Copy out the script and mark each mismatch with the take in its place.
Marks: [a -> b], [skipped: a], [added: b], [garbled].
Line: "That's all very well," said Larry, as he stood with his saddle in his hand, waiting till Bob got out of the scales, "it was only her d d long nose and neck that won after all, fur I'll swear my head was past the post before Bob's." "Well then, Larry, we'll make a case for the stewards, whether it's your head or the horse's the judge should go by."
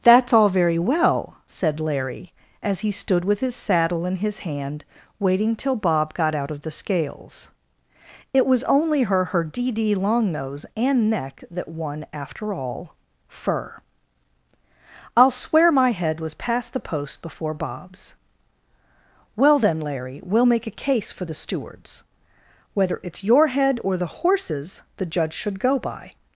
"That's all very well," said Larry, as he stood with his saddle in his hand, waiting till Bob got out of the scales, "it was only her [added: her] d d long nose and neck that won after all, fur I'll swear my head was past the post before Bob's." "Well then, Larry, we'll make a case for the stewards, whether it's your head or the horse's the judge should go by."